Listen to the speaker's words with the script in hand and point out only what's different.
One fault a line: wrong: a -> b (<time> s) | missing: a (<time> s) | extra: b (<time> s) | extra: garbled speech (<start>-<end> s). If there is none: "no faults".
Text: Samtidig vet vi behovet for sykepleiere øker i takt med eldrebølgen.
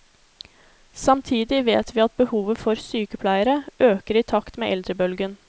extra: at (2.0 s)